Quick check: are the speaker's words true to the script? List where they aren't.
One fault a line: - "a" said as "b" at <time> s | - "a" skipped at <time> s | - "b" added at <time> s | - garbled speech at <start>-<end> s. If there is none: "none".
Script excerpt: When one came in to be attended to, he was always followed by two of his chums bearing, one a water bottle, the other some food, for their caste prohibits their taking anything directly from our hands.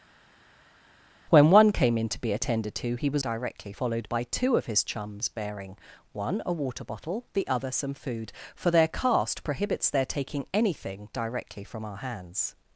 - "always" said as "directly" at 3.2 s